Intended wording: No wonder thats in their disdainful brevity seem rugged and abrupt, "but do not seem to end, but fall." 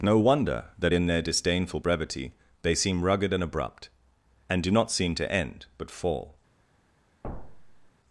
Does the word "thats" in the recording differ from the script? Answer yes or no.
yes